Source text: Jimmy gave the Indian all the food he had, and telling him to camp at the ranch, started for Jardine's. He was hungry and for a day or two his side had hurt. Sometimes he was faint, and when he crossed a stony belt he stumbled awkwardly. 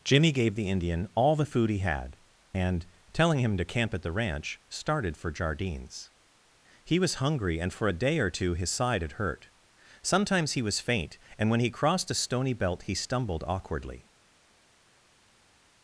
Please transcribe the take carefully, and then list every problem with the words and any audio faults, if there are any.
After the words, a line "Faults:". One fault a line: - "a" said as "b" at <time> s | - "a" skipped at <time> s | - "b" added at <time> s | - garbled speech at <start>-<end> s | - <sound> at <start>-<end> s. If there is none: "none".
Jimmy gave the Indian all the food he had, and telling him to camp at the ranch, started for Jardine's. He was hungry and for a day or two his side had hurt. Sometimes he was faint, and when he crossed a stony belt he stumbled awkwardly.
Faults:
none